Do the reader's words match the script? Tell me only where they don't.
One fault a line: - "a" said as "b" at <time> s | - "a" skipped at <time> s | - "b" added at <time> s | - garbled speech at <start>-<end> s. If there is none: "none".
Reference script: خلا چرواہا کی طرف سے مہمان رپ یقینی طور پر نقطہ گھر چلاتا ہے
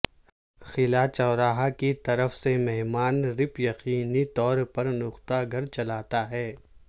none